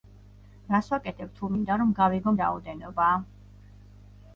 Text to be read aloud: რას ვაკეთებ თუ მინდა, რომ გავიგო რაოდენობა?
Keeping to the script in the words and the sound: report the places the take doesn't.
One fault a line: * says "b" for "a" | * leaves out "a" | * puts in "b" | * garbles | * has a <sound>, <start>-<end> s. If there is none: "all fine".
all fine